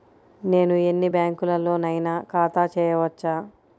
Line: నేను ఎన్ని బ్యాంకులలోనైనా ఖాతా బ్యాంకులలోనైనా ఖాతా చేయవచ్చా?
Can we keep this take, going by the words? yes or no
no